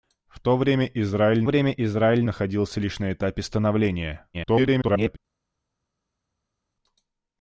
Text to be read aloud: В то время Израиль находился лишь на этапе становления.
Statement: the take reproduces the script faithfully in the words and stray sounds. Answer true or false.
false